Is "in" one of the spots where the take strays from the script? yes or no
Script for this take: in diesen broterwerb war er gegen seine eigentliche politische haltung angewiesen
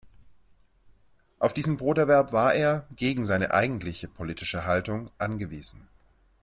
yes